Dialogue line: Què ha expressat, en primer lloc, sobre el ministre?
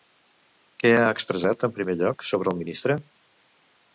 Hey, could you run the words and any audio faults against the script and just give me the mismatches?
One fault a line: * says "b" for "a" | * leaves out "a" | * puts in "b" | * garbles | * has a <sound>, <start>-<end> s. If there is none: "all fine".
all fine